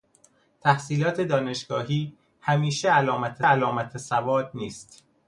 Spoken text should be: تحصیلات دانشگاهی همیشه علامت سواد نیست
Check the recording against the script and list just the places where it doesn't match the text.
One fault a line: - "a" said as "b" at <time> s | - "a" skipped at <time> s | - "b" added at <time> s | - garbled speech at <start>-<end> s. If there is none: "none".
- "علامت" added at 3.4 s